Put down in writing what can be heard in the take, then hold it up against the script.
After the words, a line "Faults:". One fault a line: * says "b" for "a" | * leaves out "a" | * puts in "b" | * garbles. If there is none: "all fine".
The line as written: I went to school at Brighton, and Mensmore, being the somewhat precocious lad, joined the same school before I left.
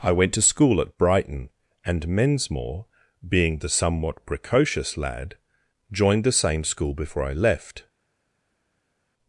I went to school at Brighton, and Mensmore, being the somewhat precocious lad, joined the same school before I left.
Faults:
all fine